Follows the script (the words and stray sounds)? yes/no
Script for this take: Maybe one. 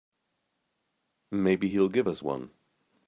no